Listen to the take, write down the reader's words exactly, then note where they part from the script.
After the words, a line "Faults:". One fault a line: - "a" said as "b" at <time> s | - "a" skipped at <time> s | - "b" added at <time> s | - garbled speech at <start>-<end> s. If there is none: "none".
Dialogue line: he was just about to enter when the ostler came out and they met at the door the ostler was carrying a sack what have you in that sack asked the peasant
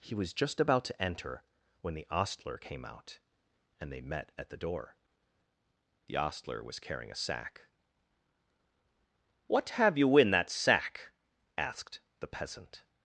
he was just about to enter when the ostler came out and they met at the door the ostler was carrying a sack what have you in that sack asked the peasant
Faults:
none